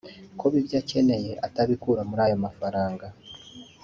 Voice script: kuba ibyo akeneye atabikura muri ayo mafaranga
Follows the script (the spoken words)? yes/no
yes